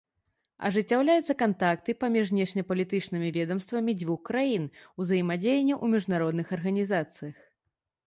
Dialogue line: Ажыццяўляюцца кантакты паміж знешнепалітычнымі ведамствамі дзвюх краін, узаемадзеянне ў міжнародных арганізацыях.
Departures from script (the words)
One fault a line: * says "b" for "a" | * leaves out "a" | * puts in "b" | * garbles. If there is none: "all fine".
all fine